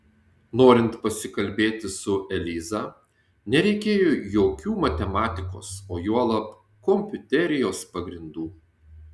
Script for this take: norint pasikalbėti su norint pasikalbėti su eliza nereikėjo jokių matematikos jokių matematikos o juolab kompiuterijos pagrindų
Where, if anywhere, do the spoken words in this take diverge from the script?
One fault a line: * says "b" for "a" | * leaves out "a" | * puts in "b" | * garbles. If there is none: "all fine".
* leaves out "norint pasikalbėti su"
* leaves out "jokių matematikos"